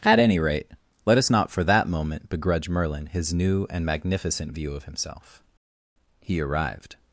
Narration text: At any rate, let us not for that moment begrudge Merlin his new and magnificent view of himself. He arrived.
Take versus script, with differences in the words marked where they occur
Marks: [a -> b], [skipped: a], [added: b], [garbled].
At any rate, let us not for that moment begrudge Merlin his new and magnificent view of himself. He arrived.